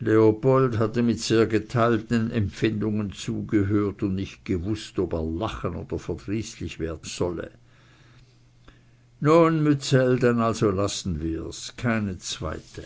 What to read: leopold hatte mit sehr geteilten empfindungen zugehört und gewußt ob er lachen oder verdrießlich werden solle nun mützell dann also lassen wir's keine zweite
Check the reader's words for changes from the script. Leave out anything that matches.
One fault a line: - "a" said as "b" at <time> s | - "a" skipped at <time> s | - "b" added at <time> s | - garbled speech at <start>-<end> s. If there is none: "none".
- "nicht" added at 4.2 s